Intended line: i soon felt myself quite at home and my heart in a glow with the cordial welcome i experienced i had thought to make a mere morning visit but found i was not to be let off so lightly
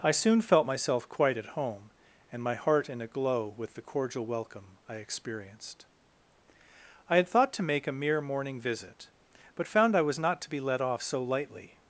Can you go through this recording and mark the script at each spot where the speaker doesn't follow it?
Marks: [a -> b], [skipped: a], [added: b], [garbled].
i soon felt myself quite at home and my heart in a glow with the cordial welcome i experienced i had thought to make a mere morning visit but found i was not to be let off so lightly